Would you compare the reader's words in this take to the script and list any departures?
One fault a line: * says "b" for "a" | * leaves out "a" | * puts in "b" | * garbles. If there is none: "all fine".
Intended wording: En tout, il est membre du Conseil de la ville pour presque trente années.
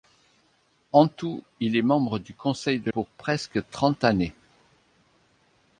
* leaves out "la ville"